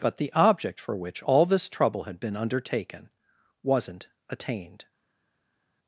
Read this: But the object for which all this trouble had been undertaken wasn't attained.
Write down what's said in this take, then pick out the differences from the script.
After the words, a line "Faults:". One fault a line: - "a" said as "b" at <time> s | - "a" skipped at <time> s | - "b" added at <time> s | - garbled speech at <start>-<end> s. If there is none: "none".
But the object for which all this trouble had been undertaken wasn't attained.
Faults:
none